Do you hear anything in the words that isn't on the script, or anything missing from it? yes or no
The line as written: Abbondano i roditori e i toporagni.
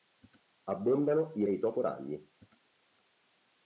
yes